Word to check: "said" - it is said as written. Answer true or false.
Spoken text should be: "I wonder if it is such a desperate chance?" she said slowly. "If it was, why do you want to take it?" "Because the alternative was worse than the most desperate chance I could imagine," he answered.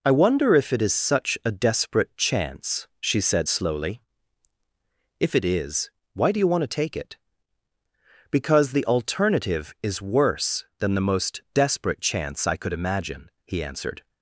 true